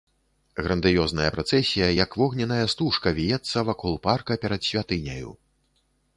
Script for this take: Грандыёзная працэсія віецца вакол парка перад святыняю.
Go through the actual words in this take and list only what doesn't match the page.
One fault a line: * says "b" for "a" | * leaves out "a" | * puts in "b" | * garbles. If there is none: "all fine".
* puts in "як вогненная стужка"